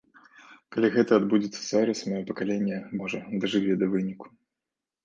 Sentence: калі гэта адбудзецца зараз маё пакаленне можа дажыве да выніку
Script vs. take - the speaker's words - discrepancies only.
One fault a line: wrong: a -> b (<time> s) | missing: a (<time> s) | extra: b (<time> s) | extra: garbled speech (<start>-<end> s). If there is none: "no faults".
no faults